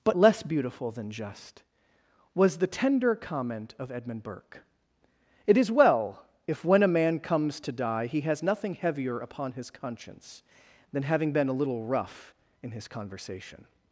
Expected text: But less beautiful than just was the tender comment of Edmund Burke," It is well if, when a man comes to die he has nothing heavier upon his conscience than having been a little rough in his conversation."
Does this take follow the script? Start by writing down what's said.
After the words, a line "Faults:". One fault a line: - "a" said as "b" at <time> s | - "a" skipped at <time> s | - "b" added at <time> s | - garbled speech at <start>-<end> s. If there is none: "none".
But less beautiful than just was the tender comment of Edmund Burke," It is well if, when a man comes to die he has nothing heavier upon his conscience than having been a little rough in his conversation."
Faults:
none